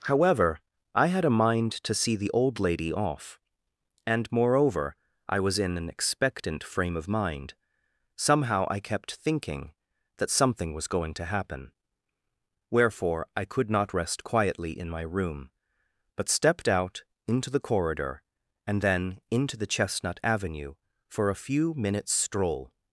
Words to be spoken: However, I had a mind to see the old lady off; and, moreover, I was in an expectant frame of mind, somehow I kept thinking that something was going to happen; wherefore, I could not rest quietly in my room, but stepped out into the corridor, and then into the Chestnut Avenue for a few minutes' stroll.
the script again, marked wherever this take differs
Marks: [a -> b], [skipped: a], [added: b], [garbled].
However, I had a mind to see the old lady off; and, moreover, I was in an expectant frame of mind, somehow I kept thinking that something was going to happen; wherefore, I could not rest quietly in my room, but stepped out into the corridor, and then into the Chestnut Avenue for a few minutes' stroll.